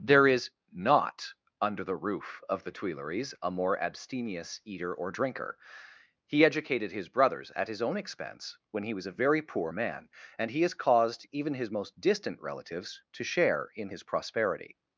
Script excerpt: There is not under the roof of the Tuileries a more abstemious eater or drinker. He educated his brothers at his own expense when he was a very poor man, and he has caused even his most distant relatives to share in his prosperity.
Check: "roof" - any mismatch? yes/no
no